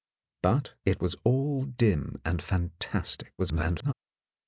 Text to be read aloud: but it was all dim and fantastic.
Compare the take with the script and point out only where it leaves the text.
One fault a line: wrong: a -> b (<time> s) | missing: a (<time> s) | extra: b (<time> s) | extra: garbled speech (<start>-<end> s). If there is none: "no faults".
extra: garbled speech (3.4-3.9 s)